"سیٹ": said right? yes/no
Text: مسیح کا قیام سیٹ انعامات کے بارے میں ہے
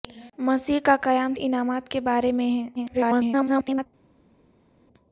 no